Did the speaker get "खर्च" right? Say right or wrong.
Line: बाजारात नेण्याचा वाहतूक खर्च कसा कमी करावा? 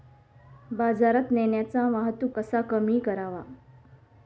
wrong